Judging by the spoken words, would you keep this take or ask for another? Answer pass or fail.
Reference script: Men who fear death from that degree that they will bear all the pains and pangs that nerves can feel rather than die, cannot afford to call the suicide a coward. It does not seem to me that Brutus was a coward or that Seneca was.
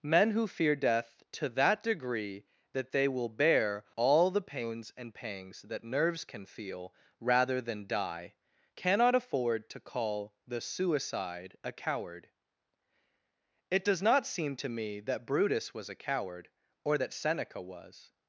fail